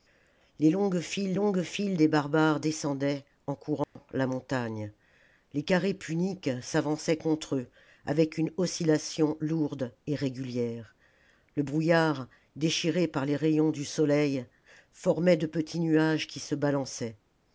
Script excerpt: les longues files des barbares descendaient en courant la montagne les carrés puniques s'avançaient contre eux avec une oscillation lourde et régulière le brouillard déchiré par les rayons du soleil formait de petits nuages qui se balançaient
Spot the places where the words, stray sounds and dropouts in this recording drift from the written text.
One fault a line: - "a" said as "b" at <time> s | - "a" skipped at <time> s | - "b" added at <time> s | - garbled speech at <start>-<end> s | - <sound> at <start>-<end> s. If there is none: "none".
- "longues files" added at 1.3 s
- dropout at 3.8-4.0 s